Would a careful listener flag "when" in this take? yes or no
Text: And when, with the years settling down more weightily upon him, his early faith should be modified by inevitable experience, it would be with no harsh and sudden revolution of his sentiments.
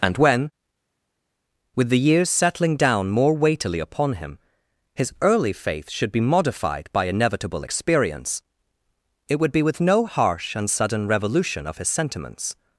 no